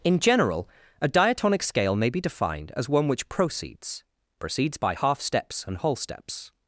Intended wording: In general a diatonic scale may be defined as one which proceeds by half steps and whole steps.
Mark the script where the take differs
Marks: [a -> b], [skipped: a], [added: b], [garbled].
In general a diatonic scale may be defined as one which proceeds [added: proceeds] by half steps and whole steps.